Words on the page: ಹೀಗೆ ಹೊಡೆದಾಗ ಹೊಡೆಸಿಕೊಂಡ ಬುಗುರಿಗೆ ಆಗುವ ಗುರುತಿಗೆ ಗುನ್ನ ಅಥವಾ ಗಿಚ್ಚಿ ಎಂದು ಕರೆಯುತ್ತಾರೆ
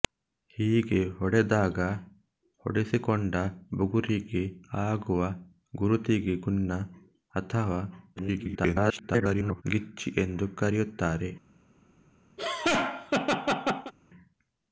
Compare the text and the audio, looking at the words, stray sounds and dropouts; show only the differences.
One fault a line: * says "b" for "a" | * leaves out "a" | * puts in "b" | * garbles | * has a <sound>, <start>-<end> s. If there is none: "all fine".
* garbles
* has a laugh, 12.4-13.9 s